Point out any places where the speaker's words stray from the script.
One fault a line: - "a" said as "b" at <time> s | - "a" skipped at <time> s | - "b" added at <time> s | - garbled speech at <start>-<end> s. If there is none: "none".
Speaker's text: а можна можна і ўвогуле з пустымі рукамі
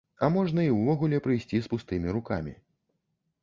- "можна" skipped at 0.6 s
- "прыйсці" added at 1.3 s